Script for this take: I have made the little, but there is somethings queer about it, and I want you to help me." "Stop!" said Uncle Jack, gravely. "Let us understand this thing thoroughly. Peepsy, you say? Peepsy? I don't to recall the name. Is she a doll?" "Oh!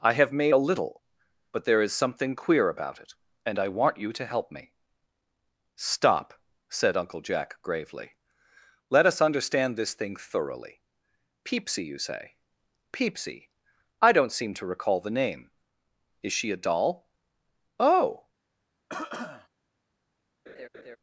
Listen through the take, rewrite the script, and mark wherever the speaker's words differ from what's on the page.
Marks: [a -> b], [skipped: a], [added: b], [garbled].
I have made [the -> a] little, but there is [somethings -> something] queer about it, and I want you to help me." "Stop!" said Uncle Jack, gravely. "Let us understand this thing thoroughly. Peepsy, you say? Peepsy? I don't [added: seem] to recall the name. Is she a doll?" "Oh!